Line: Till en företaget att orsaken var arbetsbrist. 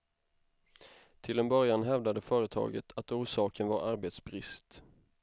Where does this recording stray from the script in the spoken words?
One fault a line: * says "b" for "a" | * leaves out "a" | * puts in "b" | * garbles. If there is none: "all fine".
* puts in "början hävdade"